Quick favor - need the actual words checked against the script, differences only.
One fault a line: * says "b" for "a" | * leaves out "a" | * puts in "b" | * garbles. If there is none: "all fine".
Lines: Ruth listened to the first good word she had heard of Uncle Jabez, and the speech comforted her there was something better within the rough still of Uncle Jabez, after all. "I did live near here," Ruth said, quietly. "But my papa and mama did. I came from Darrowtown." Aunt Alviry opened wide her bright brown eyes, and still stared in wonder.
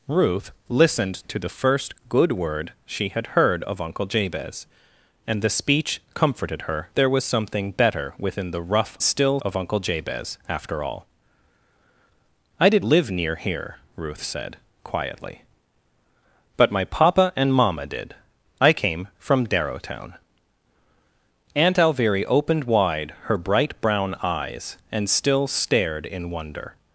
all fine